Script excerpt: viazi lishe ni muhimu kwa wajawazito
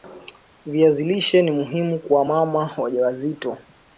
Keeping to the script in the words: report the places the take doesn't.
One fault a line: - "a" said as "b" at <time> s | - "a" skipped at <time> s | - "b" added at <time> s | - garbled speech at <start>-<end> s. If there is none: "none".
- "mama" added at 2.2 s